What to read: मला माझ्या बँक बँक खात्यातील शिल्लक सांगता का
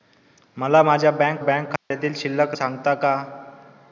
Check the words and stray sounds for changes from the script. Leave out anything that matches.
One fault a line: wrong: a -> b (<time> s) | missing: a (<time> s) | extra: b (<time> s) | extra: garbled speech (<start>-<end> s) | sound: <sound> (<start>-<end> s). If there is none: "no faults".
sound: dropout (1.8-1.9 s)